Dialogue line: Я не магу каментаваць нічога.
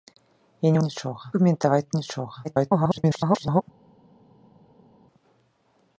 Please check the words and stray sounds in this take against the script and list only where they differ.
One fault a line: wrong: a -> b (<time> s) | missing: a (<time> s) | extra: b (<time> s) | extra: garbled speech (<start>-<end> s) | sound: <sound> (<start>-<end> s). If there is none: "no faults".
wrong: магу -> нічога (0.8 s)
extra: garbled speech (2.4-3.6 s)